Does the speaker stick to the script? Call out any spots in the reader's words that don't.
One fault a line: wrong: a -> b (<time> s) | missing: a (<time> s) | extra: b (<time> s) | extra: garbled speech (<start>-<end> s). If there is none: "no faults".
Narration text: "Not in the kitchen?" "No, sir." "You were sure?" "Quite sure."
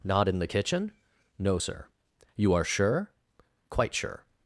wrong: were -> are (2.5 s)